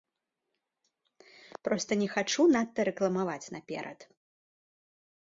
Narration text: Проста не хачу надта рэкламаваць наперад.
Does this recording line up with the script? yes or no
yes